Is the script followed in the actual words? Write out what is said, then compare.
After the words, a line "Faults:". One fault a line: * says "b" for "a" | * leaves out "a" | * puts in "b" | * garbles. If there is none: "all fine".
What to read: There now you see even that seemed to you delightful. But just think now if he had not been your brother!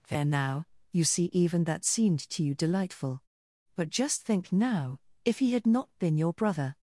There now you see even that seemed to you delightful. But just think now if he had not been your brother!
Faults:
all fine